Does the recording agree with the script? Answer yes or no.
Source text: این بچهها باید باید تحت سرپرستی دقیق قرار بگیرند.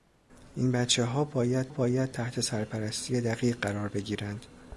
yes